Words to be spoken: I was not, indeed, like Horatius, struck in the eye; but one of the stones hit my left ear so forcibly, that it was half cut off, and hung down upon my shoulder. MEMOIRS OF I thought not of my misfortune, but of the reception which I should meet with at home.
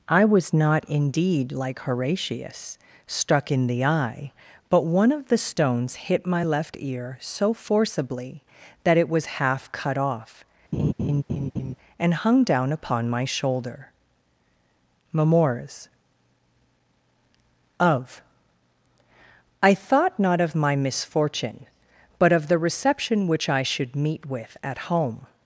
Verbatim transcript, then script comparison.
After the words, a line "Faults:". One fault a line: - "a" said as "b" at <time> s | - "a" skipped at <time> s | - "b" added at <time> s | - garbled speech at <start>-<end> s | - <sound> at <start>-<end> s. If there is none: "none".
I was not, indeed, like Horatius, struck in the eye; but one of the stones hit my left ear so forcibly, that it was half cut off, and hung down upon my shoulder. MEMOIRS OF I thought not of my misfortune, but of the reception which I should meet with at home.
Faults:
- laugh at 10.7-11.8 s